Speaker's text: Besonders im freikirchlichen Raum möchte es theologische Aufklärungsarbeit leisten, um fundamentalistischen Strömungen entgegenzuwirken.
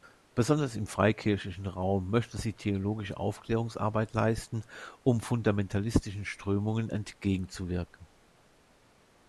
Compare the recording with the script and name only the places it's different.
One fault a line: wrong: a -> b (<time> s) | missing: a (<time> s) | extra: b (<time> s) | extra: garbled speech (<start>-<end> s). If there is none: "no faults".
wrong: es -> sie (2.4 s)